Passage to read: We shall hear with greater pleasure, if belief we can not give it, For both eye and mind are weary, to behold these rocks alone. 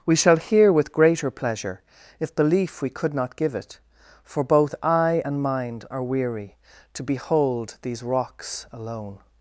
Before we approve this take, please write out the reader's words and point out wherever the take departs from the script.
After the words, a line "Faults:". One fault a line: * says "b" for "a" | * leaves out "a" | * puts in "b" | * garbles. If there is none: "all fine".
We shall hear with greater pleasure, if belief we could not give it, For both eye and mind are weary, to behold these rocks alone.
Faults:
* says "could" for "can"